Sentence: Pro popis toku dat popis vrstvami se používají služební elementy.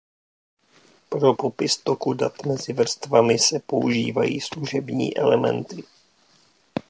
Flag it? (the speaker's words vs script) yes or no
yes